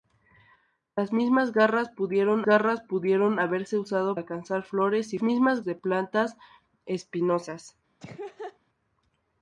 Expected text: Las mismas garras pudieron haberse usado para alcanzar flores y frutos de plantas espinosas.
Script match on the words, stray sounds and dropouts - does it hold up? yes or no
no